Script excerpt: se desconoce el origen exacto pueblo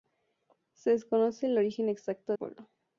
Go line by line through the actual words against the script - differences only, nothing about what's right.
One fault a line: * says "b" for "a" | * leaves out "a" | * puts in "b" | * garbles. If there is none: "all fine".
all fine